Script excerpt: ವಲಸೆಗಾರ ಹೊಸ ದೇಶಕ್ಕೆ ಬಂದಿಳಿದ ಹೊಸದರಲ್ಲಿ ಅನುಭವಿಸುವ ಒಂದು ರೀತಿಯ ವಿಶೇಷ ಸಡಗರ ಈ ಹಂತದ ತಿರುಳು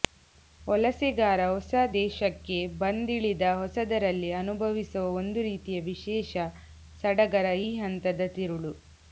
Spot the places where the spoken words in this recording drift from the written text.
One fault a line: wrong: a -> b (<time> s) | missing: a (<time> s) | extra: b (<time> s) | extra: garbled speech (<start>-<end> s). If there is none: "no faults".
no faults